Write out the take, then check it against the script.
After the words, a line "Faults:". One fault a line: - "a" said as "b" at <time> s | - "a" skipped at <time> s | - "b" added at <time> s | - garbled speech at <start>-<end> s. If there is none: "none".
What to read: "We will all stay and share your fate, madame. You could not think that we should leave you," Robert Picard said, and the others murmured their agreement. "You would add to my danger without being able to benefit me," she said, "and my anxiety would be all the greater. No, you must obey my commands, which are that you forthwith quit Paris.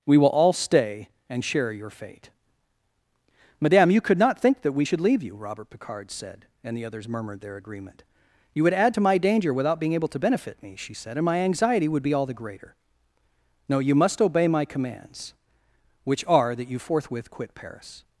"We will all stay and share your fate, madame. You could not think that we should leave you," Robert Picard said, and the others murmured their agreement. "You would add to my danger without being able to benefit me," she said, "and my anxiety would be all the greater. No, you must obey my commands, which are that you forthwith quit Paris.
Faults:
none